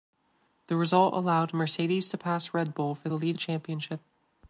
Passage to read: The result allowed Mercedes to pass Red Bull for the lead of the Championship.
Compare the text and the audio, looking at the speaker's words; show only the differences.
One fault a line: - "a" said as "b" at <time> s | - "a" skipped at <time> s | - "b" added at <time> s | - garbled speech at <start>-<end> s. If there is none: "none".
- "of" skipped at 3.4 s